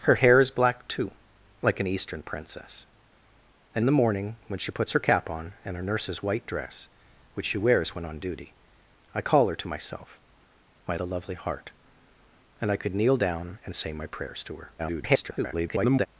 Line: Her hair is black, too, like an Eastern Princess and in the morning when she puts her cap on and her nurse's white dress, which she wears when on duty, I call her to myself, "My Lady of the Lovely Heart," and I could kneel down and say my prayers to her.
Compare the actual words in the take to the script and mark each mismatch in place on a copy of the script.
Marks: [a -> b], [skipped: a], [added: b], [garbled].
Her hair is black, too, like an Eastern Princess and [skipped: in] the morning when she puts her cap on and her nurse's white dress, which she wears when on duty, I call her to myself, "My [skipped: Lady of] the Lovely Heart," and I could kneel down and say my prayers to her. [garbled]